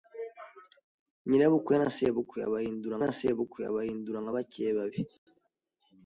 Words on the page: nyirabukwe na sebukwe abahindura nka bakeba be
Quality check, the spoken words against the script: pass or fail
fail